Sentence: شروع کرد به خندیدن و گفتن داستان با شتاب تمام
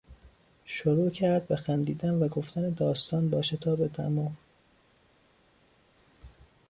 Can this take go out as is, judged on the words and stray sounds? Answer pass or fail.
pass